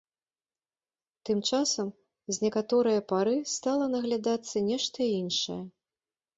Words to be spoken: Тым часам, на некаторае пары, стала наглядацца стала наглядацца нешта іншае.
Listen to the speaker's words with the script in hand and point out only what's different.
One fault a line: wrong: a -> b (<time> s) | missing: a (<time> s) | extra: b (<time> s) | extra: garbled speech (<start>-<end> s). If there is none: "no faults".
wrong: на -> з (2.3 s)
missing: стала наглядацца (4.6 s)